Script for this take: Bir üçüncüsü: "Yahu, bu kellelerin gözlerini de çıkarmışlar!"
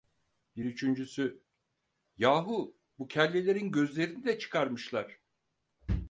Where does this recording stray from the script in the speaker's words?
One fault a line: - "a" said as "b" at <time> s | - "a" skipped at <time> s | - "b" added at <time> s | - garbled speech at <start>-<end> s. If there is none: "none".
none